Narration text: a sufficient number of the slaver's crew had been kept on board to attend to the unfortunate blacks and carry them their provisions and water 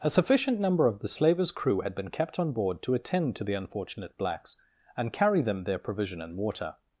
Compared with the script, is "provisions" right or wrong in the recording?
wrong